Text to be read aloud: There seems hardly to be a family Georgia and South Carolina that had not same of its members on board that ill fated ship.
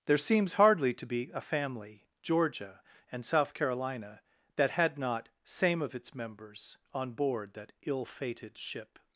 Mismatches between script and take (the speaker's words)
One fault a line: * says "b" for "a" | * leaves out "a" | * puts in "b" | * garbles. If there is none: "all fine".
all fine